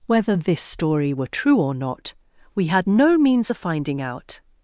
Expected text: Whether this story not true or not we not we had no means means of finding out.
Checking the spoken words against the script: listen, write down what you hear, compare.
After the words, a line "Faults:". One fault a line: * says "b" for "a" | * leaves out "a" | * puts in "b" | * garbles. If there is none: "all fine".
Whether this story were true or not we had no means of finding out.
Faults:
* says "were" for "not"
* leaves out "not we"
* leaves out "means"